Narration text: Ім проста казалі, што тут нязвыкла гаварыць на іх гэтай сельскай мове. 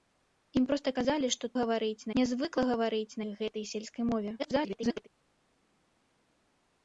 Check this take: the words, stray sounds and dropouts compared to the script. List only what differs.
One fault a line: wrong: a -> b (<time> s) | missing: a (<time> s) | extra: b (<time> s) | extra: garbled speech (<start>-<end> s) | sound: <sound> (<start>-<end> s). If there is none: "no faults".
wrong: тут -> гаварыць (1.6 s)
missing: на (3.2 s)
extra: garbled speech (4.4-5.1 s)